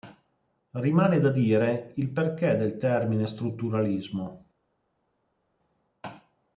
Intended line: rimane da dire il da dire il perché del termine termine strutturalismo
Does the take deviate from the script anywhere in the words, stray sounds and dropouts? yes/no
yes